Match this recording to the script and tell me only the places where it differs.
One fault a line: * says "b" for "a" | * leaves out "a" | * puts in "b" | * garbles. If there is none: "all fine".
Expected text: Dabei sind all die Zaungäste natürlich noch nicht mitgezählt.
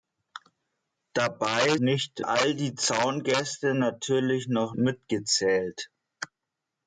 * says "nicht" for "sind"
* leaves out "nicht"